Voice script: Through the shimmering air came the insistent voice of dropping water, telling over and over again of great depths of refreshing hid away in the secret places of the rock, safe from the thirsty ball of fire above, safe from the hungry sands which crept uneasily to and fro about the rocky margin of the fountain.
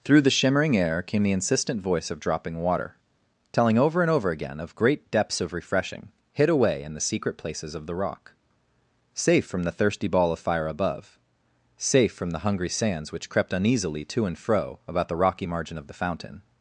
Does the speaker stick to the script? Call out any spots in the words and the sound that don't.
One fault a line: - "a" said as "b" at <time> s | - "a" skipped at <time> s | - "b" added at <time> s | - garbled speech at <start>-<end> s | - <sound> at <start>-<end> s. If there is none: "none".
none